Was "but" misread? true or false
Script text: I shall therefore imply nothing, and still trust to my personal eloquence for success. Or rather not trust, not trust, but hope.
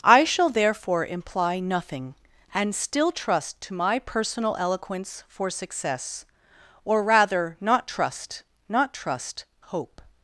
true